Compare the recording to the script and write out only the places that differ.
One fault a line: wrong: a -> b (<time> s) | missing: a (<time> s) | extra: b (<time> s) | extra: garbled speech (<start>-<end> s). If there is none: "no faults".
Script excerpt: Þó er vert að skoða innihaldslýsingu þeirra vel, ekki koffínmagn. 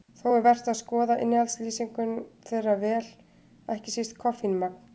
extra: síst (4.0 s)